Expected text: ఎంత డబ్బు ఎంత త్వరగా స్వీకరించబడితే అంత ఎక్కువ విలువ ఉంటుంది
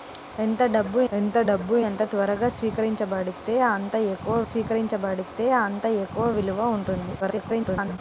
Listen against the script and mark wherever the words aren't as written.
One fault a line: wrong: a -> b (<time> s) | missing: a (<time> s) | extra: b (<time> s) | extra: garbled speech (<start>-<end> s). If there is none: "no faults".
extra: డబ్బు ఎంత (1.5 s)
extra: స్వీకరించబడితే అంత ఎక్కువ (4.5 s)
extra: garbled speech (7.2-8.0 s)